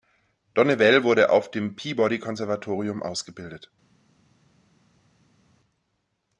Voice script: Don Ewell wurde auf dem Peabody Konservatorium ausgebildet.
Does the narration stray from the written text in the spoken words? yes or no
no